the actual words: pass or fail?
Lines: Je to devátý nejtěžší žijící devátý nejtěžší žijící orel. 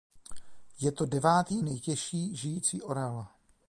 fail